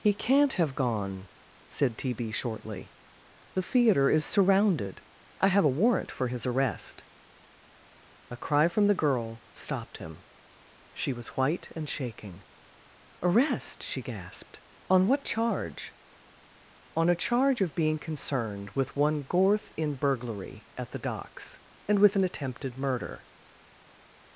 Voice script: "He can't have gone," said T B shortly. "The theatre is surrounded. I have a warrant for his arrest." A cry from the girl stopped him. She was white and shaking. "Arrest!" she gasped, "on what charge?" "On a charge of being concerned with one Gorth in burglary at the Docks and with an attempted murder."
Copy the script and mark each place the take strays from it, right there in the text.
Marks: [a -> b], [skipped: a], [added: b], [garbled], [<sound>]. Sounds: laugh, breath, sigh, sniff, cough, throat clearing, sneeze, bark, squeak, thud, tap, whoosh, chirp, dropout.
"He can't have gone," said T B shortly. "The theatre is surrounded. I have a warrant for his arrest." A cry from the girl stopped him. She was white and shaking. "Arrest!" she gasped, "on what charge?" "On a charge of being concerned with one Gorth in burglary at the Docks and with an attempted murder."